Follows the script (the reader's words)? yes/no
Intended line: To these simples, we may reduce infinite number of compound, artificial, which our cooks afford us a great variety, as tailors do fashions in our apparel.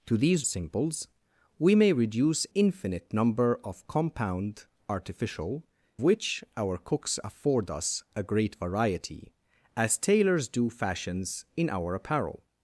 yes